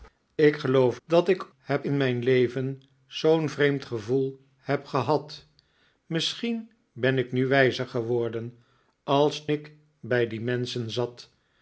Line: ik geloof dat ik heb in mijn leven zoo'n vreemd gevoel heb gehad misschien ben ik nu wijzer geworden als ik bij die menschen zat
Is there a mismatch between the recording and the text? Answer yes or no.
no